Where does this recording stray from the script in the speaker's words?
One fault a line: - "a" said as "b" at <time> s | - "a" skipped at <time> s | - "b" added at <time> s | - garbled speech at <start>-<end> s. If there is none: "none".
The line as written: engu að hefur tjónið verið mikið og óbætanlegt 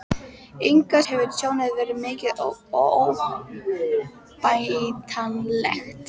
none